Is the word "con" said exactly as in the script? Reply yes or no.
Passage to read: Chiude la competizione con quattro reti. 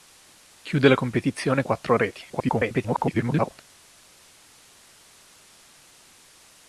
no